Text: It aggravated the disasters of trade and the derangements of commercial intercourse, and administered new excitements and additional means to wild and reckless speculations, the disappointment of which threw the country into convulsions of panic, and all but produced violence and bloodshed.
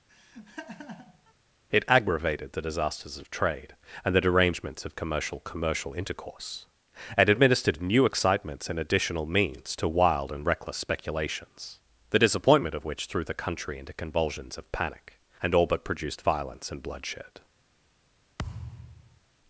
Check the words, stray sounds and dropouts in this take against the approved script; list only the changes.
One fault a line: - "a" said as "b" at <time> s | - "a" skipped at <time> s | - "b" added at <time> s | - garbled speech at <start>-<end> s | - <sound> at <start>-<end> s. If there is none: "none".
- laugh at 0.1-1.3 s
- "commercial" added at 5.4 s
- thud at 18.4-19.2 s